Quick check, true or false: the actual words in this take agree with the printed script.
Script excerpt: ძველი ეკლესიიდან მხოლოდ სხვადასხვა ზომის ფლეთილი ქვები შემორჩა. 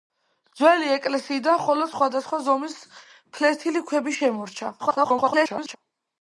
false